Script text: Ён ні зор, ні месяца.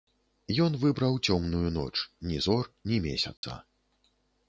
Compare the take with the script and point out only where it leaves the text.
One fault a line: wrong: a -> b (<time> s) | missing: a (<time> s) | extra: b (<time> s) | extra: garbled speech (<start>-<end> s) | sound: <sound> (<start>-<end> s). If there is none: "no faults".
extra: выбраў цёмную ноч (0.8 s)
sound: dropout (3.4-3.4 s)